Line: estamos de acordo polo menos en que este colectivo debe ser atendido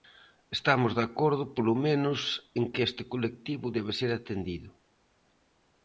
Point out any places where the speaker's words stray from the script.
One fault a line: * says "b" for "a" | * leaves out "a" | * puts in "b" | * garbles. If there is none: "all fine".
all fine